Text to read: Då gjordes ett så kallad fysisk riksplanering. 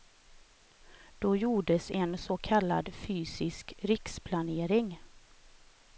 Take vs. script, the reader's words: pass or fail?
fail